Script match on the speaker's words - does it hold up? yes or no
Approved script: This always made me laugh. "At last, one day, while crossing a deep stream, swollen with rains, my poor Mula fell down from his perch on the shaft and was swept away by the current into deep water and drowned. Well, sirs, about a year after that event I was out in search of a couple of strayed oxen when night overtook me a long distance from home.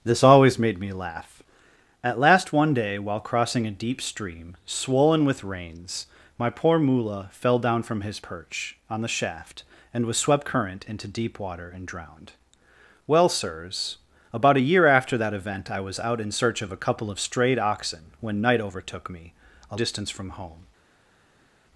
no